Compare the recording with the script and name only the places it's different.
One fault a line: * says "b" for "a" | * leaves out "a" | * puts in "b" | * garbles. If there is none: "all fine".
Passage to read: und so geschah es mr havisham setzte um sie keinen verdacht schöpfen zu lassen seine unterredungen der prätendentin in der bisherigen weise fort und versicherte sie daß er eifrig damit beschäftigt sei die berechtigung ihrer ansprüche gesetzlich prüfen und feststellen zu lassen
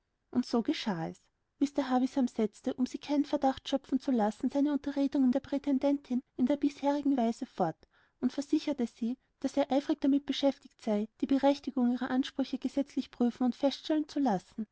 all fine